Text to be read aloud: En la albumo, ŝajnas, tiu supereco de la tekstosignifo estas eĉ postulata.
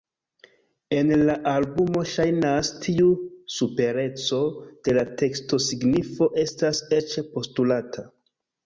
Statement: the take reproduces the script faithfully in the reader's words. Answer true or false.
true